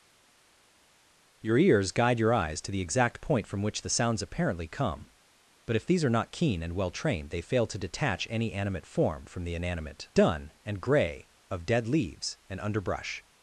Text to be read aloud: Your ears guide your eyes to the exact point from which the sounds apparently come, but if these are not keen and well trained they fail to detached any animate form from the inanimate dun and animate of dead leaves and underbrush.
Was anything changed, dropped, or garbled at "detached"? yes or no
yes